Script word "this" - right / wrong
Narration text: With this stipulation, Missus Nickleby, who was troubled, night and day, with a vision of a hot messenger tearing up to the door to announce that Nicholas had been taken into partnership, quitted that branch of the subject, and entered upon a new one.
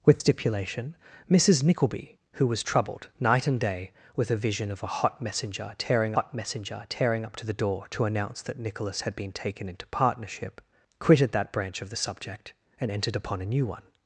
wrong